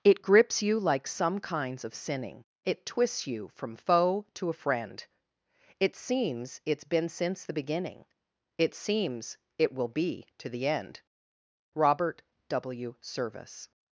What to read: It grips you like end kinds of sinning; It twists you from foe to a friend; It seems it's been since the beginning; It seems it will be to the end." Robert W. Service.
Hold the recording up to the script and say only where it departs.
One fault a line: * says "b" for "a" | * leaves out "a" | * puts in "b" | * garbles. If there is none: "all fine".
* says "some" for "end"